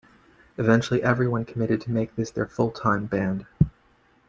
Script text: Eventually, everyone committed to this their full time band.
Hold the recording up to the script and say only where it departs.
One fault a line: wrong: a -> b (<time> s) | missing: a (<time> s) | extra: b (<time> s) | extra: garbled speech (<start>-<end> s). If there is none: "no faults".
extra: make (1.9 s)